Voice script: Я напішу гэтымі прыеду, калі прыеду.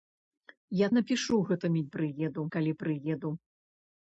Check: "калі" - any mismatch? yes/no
no